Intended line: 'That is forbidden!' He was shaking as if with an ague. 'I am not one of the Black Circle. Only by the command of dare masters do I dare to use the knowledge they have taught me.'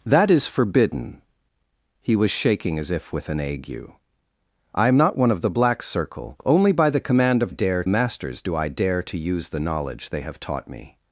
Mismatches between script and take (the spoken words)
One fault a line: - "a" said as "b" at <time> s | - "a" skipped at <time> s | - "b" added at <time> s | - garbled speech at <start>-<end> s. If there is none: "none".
none